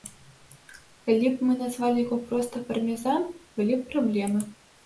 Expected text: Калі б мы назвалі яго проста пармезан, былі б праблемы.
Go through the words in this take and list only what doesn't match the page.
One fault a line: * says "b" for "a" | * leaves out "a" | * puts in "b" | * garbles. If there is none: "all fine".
all fine